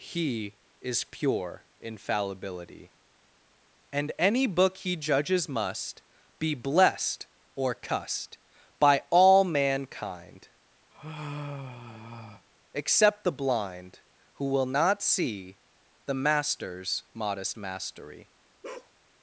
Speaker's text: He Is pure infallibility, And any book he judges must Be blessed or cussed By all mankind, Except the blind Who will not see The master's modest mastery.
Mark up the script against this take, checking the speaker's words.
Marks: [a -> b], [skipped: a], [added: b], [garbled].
He Is pure infallibility, And any book he judges must Be blessed or cussed By all mankind, Except the blind Who will not see The master's modest mastery.